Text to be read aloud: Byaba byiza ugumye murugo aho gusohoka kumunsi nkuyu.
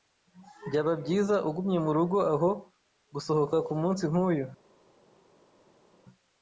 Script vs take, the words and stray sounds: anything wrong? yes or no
no